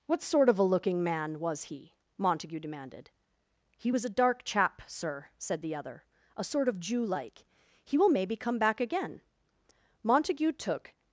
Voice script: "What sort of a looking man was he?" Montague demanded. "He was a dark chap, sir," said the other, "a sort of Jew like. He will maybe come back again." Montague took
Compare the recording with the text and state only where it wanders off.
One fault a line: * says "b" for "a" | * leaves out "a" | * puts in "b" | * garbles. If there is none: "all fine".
all fine